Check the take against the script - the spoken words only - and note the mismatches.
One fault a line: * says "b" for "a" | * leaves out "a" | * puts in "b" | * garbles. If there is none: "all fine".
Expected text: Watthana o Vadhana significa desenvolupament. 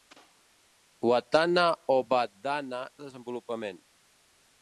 * leaves out "significa"